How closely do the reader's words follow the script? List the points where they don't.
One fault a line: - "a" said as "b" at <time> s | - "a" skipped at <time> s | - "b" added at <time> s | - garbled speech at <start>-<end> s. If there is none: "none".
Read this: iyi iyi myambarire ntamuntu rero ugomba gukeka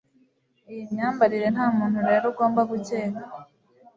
- "iyi" skipped at 0.8 s